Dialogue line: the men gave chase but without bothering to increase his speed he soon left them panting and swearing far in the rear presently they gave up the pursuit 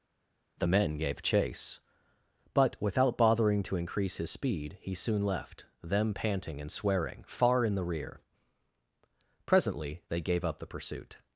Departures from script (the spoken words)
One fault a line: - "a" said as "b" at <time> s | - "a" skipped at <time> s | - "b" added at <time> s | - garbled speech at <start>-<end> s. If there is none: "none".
none